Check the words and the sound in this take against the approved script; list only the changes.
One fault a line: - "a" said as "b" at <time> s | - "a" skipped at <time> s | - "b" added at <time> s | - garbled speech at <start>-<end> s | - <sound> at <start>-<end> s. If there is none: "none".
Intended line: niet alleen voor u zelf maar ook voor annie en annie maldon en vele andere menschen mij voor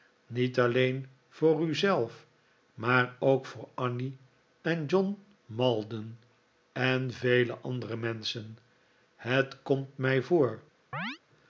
- "annie" said as "john" at 4.8 s
- "het komt" added at 9.2 s
- chirp at 10.9-11.2 s